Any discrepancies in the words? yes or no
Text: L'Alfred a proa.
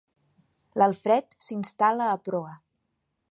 yes